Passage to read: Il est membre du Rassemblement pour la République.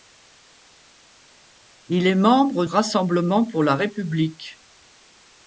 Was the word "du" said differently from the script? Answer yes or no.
yes